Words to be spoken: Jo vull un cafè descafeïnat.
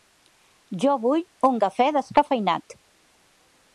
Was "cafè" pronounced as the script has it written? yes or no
yes